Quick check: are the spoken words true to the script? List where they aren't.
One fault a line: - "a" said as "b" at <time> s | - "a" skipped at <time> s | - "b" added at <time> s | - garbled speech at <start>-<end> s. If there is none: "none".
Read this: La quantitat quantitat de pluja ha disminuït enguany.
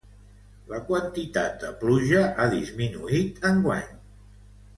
- "quantitat" skipped at 1.6 s